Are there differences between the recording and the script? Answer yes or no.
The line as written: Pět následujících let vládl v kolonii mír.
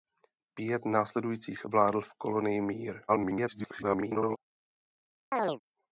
yes